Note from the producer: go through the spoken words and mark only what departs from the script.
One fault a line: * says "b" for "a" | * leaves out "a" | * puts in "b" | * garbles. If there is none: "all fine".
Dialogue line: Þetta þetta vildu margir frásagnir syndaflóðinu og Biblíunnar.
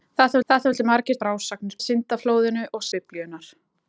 all fine